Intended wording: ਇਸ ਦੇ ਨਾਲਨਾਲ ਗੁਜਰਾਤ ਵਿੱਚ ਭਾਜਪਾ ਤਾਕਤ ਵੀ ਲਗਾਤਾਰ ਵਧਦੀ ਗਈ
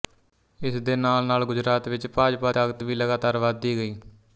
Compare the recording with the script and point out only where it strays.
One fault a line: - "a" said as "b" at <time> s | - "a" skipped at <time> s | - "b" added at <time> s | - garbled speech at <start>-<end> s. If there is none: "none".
none